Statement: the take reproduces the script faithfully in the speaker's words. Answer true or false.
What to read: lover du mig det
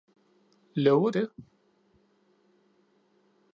false